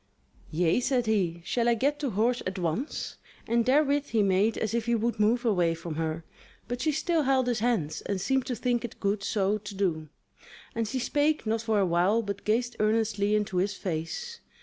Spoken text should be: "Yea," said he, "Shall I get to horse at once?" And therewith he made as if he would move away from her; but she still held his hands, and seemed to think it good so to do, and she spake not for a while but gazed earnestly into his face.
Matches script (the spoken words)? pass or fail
pass